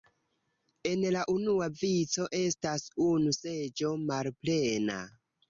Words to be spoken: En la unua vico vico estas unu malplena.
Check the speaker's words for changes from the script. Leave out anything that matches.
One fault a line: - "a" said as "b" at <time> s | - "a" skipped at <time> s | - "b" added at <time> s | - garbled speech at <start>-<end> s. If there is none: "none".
- "vico" skipped at 2.2 s
- "seĝo" added at 3.4 s